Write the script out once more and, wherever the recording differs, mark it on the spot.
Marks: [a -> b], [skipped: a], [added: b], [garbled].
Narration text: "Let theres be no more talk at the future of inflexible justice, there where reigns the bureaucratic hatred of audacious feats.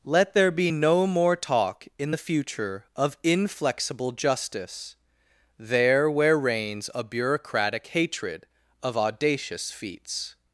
"Let [theres -> there] be no more talk [at -> in] the future of inflexible justice, there where reigns [the -> a] bureaucratic hatred of audacious feats.